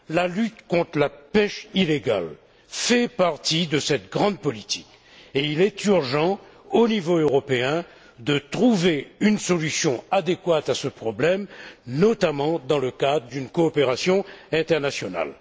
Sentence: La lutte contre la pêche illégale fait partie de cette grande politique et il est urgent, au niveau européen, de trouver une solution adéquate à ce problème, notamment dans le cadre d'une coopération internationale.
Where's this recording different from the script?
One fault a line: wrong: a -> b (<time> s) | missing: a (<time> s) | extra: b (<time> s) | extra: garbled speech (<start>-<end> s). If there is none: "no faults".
no faults